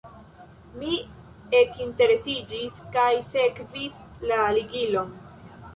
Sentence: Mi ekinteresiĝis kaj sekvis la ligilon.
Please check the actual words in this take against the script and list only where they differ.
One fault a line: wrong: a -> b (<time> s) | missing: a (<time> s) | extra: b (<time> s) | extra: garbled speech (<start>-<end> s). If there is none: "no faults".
no faults